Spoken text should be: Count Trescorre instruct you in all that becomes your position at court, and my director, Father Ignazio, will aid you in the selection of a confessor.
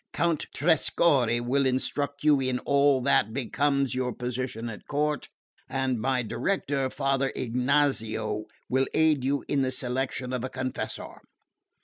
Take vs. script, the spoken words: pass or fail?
fail